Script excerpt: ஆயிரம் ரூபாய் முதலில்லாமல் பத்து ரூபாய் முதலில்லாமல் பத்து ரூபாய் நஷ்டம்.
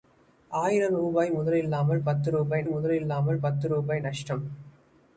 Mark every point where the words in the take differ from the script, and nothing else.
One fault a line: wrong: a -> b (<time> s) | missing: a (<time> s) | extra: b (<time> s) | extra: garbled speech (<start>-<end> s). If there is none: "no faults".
no faults